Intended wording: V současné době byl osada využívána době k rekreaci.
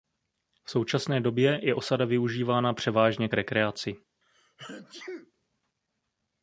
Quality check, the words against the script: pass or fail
fail